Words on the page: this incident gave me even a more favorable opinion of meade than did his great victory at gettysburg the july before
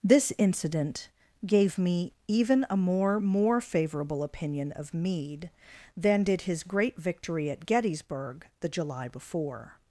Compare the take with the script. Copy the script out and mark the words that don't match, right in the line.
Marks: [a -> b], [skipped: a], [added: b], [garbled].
this incident gave me even a more [added: more] favorable opinion of meade than did his great victory at gettysburg the july before